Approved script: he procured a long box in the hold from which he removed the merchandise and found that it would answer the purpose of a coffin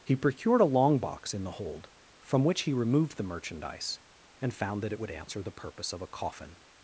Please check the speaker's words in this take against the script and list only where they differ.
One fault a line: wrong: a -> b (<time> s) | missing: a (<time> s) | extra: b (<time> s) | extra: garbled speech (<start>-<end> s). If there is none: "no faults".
no faults